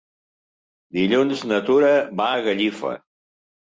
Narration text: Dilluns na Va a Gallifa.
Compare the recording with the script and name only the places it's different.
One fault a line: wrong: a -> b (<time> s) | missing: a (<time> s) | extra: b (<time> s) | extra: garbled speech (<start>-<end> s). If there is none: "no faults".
extra: Tura (1.7 s)